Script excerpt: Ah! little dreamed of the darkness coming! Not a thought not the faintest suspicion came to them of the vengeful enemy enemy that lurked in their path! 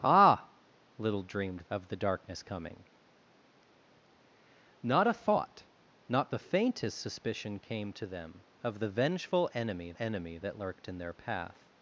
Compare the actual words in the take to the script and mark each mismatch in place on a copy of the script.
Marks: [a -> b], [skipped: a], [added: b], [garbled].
Ah! little dreamed of the darkness coming! Not a thought not the faintest suspicion came to them of the vengeful enemy enemy that lurked in their path!